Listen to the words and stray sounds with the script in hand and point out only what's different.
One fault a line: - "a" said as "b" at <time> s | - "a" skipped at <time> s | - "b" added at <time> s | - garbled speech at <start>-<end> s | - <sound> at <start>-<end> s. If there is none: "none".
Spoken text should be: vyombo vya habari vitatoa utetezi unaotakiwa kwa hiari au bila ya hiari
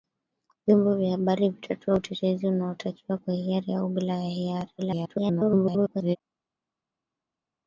- garbled speech at 4.8-6.2 s